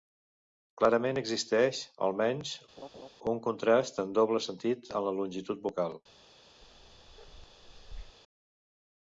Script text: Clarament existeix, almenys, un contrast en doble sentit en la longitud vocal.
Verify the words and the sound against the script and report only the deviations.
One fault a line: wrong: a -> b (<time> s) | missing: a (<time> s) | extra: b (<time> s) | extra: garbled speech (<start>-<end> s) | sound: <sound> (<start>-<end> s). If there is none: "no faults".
sound: laugh (2.8-3.1 s)
sound: bark (6.6-8.2 s)